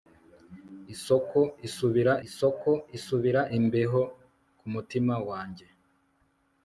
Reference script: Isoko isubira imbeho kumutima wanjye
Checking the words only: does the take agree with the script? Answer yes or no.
no